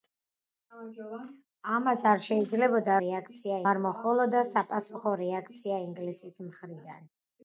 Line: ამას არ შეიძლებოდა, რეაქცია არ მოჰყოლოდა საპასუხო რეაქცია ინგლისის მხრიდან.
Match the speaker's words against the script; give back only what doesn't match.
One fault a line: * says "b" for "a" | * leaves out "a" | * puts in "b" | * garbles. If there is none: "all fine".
all fine